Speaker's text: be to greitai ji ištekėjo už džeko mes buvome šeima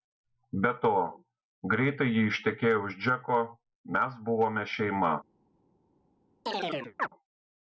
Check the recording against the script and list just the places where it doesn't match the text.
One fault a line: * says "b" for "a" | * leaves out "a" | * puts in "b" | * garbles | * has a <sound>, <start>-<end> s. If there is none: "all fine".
* has a chirp, 6.5-7.1 s